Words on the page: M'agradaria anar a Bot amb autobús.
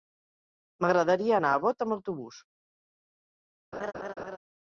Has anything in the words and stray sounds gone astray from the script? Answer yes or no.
yes